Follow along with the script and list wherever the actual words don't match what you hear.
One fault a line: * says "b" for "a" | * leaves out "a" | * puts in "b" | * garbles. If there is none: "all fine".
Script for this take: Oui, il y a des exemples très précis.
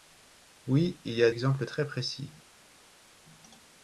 * leaves out "des"